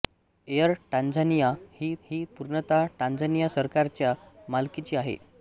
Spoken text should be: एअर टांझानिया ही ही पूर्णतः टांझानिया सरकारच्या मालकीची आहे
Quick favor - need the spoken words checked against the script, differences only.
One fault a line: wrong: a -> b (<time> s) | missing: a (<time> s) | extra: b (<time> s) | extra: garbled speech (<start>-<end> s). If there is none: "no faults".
no faults